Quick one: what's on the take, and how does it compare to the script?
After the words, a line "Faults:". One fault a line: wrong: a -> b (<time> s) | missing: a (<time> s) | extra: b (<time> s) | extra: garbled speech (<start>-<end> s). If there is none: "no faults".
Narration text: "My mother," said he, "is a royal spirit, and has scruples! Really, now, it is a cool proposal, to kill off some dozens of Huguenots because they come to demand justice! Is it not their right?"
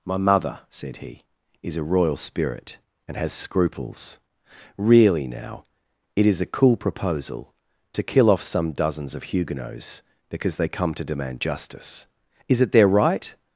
"My mother," said he, "is a royal spirit, and has scruples! Really, now, it is a cool proposal, to kill off some dozens of Huguenots because they come to demand justice! Is it their right?"
Faults:
missing: not (12.7 s)